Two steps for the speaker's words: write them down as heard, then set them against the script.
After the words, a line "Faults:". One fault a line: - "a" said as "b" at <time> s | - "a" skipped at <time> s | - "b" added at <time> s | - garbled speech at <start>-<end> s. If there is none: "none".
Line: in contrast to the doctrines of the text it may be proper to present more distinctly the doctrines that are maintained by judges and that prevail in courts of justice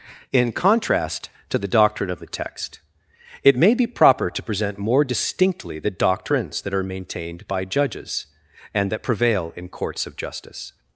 in contrast to the doctrine of the text it may be proper to present more distinctly the doctrines that are maintained by judges and that prevail in courts of justice
Faults:
- "doctrines" said as "doctrine" at 1.7 s